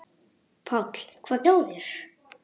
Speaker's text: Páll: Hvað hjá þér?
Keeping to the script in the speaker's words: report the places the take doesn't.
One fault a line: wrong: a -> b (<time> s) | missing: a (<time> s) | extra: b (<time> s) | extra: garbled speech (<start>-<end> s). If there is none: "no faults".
no faults